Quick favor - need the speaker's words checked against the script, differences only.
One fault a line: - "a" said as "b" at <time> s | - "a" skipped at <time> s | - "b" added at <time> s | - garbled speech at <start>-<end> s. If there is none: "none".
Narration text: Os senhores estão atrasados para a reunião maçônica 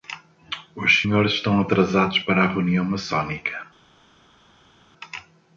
none